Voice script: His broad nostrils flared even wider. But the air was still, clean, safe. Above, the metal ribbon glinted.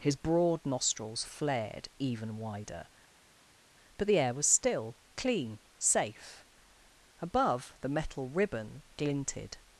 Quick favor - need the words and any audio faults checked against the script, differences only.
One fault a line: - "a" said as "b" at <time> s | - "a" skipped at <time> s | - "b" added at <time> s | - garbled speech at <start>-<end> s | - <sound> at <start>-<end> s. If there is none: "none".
none